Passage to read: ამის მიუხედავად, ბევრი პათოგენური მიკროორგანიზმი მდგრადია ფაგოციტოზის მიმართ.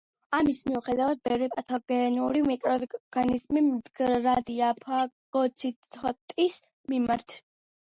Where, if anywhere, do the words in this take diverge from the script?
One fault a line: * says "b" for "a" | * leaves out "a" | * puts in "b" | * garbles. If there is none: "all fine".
all fine